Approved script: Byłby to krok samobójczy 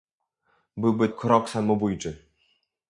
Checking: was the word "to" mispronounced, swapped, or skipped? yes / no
yes